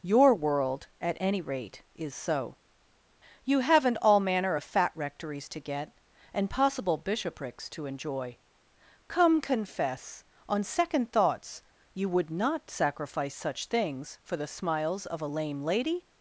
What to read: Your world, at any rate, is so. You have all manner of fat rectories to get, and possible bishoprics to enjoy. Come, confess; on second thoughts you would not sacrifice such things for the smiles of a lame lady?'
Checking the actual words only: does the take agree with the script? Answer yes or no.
no